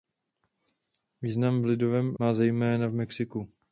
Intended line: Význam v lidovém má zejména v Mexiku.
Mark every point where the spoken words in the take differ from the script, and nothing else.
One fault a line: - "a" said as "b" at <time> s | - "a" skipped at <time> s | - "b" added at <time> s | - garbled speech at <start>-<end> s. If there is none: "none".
none